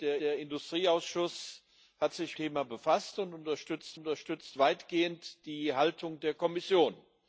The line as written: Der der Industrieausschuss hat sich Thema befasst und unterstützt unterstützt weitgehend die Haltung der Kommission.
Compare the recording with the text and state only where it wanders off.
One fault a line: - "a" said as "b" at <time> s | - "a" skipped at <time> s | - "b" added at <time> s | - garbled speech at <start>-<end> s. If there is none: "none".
none